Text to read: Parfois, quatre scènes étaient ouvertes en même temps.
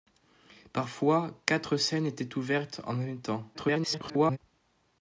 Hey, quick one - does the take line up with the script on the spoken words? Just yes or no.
no